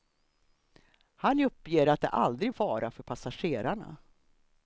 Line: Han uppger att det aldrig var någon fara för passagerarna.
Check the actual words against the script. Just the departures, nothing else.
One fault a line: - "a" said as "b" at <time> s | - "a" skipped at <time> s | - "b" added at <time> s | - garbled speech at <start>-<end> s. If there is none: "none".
- "var någon" skipped at 2.5 s